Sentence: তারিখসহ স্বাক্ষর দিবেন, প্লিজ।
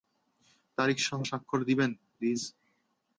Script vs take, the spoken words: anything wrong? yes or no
no